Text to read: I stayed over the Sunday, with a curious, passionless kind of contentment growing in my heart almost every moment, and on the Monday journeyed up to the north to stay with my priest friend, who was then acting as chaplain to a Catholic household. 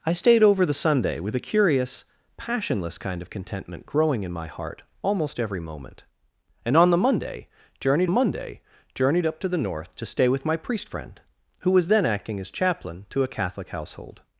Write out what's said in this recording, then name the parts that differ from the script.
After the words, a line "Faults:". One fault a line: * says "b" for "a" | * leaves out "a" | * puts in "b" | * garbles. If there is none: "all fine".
I stayed over the Sunday, with a curious, passionless kind of contentment growing in my heart almost every moment, and on the Monday journeyed Monday journeyed up to the north to stay with my priest friend, who was then acting as chaplain to a Catholic household.
Faults:
* puts in "Monday journeyed"